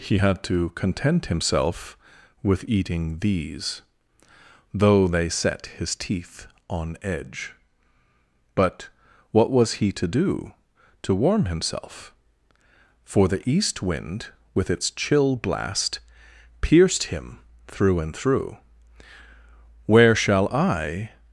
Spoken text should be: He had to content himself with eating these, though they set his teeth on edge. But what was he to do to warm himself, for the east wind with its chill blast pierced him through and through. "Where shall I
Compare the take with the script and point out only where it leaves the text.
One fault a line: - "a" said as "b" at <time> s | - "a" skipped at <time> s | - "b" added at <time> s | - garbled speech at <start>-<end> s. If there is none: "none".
none